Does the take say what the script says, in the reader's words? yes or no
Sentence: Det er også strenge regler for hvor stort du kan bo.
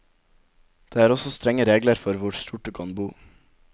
yes